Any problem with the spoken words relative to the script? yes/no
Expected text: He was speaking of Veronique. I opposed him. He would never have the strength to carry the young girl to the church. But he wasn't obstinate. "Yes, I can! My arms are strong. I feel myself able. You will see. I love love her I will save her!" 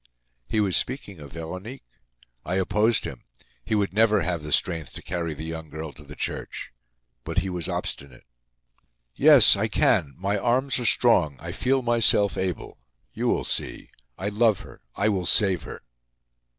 yes